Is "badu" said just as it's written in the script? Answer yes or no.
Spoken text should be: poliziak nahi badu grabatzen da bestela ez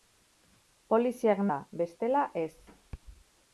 no